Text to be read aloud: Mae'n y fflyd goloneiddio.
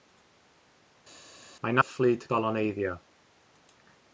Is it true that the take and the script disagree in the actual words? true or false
false